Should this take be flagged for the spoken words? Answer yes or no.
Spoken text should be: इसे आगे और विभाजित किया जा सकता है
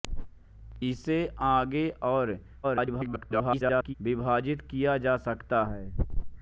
yes